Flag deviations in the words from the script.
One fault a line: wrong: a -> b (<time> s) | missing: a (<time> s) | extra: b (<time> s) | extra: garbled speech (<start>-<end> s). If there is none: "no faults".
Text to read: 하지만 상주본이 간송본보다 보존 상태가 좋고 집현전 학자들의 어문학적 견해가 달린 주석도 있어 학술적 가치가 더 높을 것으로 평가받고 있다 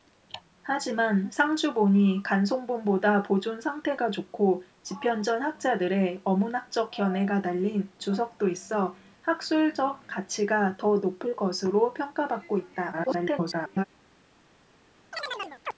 extra: garbled speech (12.9-13.8 s)